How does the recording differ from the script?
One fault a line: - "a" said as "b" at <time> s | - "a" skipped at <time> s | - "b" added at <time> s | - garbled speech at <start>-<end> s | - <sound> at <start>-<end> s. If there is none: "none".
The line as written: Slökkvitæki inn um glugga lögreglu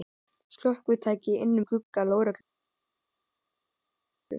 none